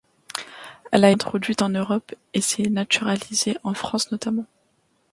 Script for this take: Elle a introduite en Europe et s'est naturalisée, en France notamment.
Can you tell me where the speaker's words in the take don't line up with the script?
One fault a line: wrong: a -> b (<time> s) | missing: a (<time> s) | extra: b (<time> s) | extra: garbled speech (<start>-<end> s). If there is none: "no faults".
no faults